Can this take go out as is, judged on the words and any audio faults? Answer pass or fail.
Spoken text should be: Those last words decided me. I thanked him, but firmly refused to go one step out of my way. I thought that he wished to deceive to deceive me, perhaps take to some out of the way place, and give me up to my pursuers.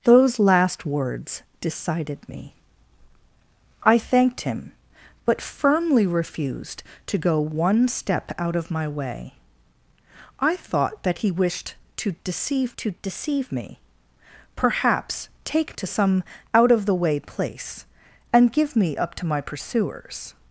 pass